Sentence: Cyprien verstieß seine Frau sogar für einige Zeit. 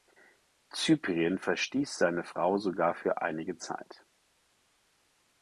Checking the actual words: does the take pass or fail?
pass